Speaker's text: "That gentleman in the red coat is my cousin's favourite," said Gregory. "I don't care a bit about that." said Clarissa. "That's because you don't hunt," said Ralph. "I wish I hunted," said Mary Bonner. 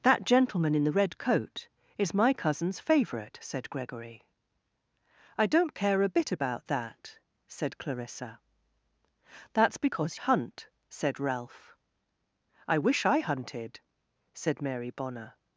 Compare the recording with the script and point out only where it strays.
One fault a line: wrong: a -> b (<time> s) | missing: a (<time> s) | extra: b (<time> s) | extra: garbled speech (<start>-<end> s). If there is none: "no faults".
missing: you don't (10.2 s)